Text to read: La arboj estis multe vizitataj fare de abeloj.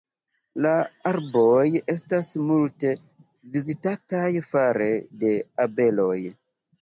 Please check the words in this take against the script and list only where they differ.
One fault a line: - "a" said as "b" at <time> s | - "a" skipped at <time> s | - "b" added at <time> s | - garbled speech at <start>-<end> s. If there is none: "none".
- "estis" said as "estas" at 1.9 s